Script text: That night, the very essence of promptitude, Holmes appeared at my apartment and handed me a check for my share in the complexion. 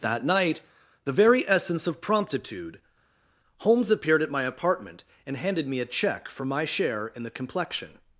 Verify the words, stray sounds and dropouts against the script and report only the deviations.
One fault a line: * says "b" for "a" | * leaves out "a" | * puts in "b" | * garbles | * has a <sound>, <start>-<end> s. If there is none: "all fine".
all fine